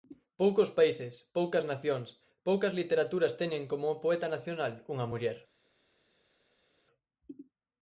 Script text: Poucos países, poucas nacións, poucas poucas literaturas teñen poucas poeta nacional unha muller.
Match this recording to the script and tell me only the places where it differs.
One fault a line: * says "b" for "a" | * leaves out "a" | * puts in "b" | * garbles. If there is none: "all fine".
* leaves out "poucas"
* says "como" for "poucas"